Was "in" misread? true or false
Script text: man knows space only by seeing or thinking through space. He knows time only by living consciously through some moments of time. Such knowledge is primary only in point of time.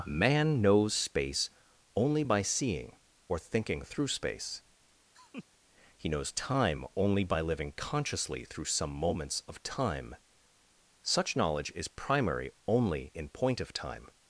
false